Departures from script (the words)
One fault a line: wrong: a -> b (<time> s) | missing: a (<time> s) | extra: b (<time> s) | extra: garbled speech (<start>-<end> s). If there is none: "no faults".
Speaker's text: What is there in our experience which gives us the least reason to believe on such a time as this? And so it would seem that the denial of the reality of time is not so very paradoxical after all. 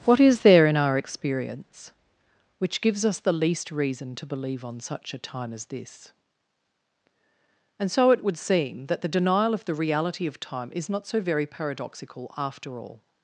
no faults